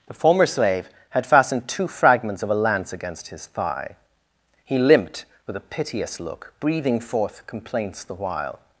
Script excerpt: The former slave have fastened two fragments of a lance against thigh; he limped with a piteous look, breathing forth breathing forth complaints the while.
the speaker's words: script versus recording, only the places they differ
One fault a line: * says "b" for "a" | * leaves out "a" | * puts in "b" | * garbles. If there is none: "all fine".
* says "had" for "have"
* puts in "his"
* leaves out "breathing forth"